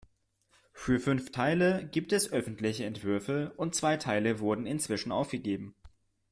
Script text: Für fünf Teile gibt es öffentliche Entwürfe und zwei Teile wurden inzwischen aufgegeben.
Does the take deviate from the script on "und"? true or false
false